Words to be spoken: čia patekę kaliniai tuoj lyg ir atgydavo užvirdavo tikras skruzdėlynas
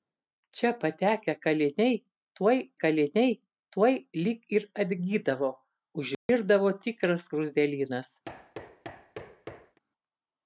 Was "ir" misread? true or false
false